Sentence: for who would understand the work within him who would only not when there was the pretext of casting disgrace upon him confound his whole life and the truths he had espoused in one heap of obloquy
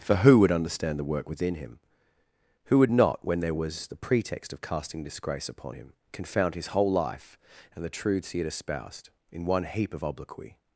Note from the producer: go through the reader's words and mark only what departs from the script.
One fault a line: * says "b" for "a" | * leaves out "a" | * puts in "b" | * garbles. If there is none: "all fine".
* leaves out "only"